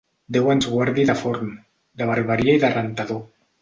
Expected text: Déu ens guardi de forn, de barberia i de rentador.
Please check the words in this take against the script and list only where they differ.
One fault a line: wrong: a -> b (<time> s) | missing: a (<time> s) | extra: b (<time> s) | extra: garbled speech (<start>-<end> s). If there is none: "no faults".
no faults